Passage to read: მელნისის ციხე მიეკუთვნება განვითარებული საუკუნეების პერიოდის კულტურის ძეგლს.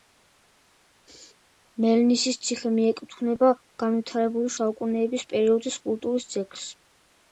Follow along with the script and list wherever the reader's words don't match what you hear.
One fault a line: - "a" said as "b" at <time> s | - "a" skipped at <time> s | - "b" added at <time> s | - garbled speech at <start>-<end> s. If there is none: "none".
none